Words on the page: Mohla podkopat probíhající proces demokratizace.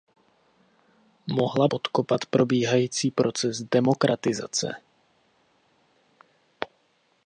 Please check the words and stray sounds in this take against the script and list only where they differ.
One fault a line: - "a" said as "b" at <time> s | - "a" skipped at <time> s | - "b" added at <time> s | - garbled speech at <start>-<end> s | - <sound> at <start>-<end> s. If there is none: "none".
none